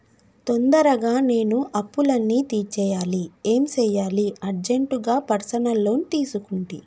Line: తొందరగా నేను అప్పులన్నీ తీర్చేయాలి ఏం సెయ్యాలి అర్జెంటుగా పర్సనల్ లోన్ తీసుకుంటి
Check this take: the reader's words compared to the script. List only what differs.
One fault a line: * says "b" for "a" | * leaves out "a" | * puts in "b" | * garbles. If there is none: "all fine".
all fine